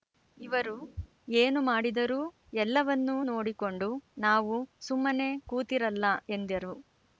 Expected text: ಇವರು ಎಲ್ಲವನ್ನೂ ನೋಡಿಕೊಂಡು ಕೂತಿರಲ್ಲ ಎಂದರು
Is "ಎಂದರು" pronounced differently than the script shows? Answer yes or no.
no